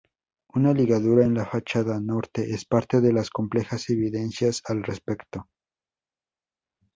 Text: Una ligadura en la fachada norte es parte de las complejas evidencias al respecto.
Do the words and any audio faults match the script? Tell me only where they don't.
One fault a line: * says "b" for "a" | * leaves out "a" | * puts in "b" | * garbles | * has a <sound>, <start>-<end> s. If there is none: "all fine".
all fine